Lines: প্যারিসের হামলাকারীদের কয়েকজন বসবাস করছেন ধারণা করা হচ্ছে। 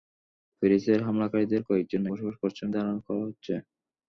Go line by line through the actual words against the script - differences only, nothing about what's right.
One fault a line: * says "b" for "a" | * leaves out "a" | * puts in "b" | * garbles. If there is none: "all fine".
all fine